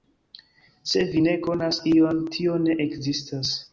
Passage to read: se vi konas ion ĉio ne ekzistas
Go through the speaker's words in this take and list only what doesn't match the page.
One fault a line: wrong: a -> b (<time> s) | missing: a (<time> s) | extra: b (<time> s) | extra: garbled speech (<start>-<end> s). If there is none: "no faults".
extra: ne (1.2 s)
wrong: ĉio -> tio (2.4 s)